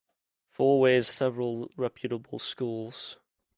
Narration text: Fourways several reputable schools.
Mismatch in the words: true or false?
false